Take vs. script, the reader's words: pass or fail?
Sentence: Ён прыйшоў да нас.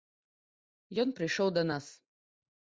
pass